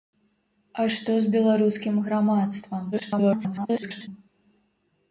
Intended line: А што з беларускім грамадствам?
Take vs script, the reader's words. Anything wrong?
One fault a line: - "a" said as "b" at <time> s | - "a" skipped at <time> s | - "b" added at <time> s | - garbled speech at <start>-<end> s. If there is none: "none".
- garbled speech at 2.9-4.1 s